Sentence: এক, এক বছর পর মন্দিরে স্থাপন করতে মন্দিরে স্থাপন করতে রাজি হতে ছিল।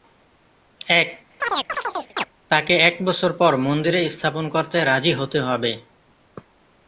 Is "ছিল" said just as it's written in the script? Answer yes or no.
no